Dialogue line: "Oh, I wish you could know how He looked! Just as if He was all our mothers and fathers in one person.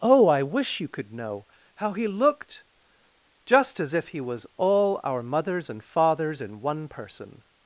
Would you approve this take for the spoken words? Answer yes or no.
yes